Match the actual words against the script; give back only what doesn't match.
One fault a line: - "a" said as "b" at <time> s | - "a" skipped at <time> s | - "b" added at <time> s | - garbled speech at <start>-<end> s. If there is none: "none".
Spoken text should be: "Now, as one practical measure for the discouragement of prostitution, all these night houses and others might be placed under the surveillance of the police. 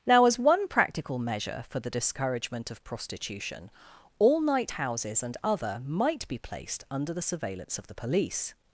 - "these" skipped at 4.4 s
- "others" said as "other" at 5.4 s